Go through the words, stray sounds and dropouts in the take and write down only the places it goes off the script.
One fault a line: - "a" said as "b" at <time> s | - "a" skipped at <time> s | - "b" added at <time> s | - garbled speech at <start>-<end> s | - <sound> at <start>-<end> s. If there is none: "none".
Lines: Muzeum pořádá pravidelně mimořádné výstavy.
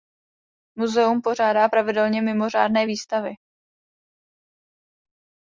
none